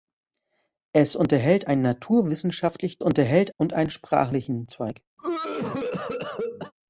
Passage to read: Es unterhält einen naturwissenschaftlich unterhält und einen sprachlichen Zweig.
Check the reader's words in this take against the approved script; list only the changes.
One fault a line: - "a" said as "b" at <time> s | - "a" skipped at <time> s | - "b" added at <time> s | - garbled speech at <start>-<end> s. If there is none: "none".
none